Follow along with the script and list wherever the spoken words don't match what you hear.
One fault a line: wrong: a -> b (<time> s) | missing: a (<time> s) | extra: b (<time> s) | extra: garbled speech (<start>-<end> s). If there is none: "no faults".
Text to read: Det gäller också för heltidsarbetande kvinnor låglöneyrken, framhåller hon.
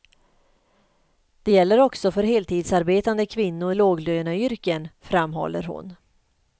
no faults